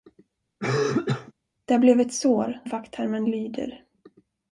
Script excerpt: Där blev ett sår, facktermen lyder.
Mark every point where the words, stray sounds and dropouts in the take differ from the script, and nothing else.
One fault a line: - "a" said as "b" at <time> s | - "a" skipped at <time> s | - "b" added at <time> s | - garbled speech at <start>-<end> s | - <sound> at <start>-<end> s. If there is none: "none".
- cough at 0.6-1.3 s